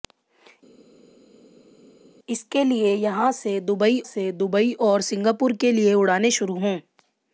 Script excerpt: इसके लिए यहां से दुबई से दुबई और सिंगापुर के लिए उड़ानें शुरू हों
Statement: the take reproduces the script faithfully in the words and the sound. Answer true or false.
true